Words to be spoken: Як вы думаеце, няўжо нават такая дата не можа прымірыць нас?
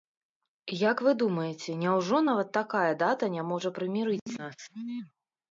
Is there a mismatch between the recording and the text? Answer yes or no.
no